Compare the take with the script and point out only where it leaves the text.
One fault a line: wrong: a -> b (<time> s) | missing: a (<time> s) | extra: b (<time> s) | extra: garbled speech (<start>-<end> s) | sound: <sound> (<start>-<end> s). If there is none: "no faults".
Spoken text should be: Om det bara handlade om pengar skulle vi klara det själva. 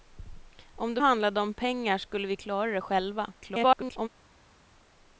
missing: bara (1.0 s)
extra: garbled speech (3.4-4.1 s)